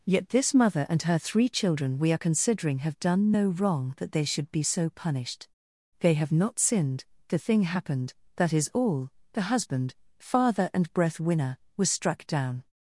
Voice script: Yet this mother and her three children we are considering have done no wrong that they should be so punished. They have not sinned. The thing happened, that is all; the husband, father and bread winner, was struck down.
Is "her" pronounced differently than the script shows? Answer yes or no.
no